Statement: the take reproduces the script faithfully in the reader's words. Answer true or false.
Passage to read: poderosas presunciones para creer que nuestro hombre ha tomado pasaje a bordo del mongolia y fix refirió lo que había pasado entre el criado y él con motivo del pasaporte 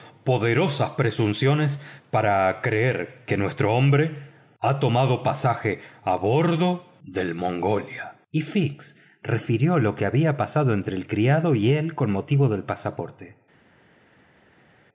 true